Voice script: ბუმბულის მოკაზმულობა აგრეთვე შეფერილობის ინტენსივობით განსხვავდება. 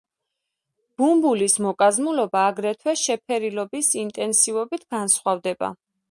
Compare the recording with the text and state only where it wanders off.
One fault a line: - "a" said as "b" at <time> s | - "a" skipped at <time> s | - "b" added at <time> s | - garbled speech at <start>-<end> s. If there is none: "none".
none